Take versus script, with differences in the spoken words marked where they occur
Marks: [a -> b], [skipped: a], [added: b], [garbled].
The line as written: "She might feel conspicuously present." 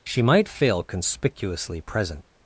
"She might [feel -> fail] conspicuously present."